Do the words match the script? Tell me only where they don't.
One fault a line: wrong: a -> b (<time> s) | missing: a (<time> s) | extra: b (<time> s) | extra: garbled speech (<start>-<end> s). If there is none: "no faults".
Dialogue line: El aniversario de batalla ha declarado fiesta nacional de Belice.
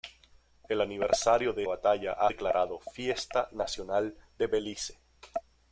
no faults